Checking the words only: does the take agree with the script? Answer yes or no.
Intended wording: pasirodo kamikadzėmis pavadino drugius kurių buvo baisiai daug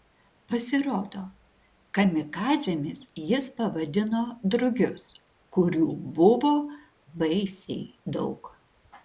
no